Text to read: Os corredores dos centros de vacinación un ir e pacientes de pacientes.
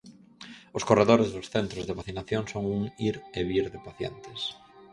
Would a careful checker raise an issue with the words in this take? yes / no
yes